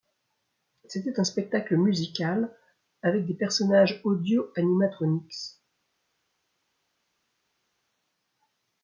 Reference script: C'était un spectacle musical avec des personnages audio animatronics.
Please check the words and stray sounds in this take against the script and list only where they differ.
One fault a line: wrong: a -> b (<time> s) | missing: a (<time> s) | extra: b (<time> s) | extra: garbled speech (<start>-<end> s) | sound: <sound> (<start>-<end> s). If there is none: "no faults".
no faults